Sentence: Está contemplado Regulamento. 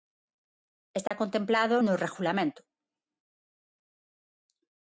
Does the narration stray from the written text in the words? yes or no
yes